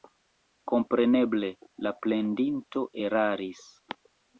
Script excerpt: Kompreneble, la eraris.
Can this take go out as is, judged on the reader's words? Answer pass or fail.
fail